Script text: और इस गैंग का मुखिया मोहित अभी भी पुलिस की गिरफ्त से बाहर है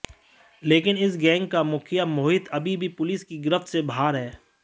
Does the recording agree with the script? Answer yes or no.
no